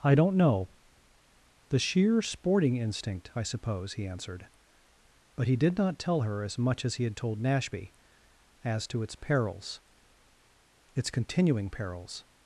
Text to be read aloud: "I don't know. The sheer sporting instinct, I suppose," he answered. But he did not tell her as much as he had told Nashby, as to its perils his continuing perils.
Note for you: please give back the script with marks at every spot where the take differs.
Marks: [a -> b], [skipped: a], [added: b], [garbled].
"I don't know. The sheer sporting instinct, I suppose," he answered. But he did not tell her as much as he had told Nashby, as to its perils [his -> its] continuing perils.